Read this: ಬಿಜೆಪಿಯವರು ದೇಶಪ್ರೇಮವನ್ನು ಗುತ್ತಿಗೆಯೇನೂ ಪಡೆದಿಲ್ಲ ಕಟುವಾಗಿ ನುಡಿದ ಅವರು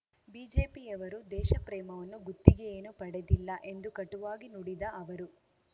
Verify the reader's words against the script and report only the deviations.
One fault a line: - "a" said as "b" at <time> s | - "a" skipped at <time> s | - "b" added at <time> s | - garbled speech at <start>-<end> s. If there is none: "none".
- "ಎಂದು" added at 3.6 s